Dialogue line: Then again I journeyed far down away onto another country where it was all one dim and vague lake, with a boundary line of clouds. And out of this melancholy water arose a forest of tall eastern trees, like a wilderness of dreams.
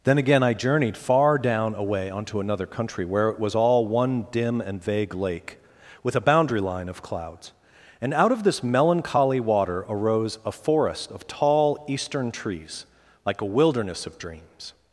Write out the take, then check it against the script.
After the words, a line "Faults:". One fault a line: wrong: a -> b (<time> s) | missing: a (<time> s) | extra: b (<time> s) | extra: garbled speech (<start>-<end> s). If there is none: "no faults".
Then again I journeyed far down away onto another country where it was all one dim and vague lake, with a boundary line of clouds. And out of this melancholy water arose a forest of tall eastern trees, like a wilderness of dreams.
Faults:
no faults